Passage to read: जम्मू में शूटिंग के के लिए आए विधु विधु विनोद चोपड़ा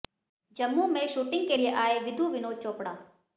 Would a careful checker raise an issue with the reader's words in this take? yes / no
yes